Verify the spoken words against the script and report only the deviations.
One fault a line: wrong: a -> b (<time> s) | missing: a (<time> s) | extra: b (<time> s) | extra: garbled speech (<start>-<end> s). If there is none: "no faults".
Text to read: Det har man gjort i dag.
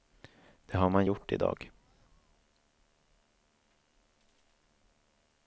no faults